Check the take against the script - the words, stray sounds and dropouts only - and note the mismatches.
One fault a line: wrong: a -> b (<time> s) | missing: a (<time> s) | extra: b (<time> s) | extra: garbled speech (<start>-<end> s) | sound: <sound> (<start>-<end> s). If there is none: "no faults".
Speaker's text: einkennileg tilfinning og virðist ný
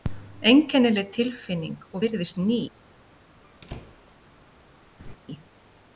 sound: squeak (3.4-4.1 s)
sound: laugh (5.0-5.2 s)